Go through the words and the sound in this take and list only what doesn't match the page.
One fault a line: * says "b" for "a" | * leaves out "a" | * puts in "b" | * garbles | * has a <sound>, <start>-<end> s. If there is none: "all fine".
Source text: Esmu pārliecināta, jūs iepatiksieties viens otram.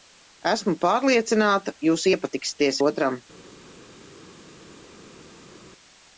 * leaves out "viens"